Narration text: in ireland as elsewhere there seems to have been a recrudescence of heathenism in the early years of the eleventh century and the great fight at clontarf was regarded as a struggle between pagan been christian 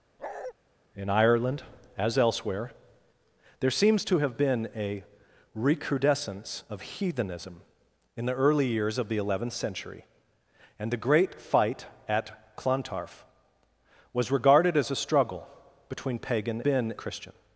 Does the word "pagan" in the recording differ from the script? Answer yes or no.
no